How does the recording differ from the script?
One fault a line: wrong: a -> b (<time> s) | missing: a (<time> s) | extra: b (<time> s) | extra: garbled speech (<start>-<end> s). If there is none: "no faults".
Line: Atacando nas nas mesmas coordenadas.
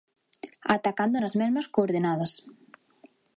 missing: nas (1.3 s)